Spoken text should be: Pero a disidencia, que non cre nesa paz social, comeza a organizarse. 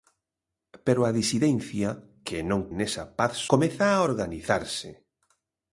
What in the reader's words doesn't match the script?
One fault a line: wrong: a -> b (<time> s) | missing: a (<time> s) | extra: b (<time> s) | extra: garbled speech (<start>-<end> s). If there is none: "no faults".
missing: cre (2.6 s)
missing: social (3.3 s)